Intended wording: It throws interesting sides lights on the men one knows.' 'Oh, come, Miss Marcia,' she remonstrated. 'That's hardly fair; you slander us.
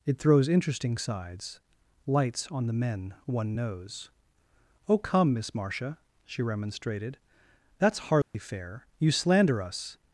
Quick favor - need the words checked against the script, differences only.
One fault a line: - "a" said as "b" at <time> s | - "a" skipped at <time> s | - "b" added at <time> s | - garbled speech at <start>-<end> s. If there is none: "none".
none